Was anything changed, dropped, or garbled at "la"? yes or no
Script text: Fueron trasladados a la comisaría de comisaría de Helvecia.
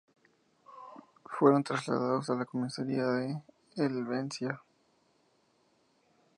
no